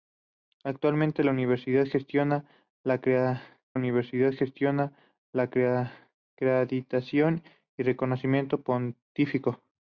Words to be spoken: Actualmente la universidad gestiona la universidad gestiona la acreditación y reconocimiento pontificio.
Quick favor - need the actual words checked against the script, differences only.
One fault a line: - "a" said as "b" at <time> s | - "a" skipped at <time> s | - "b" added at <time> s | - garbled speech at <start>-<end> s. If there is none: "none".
none